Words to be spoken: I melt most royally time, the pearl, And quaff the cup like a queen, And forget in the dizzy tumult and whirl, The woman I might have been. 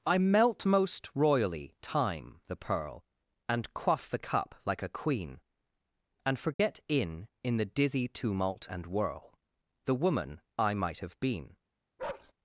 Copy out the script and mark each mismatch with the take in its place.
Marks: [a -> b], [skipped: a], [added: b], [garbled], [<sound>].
I melt most royally time, the pearl, And quaff the cup like a queen, And forget [dropout] in [added: in] the dizzy tumult and whirl, The woman I might have been. [bark]